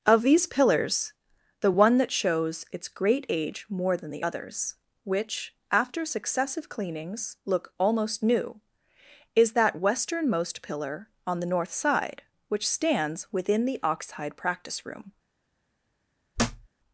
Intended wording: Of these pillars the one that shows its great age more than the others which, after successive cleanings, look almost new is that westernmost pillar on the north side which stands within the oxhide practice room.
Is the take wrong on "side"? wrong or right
right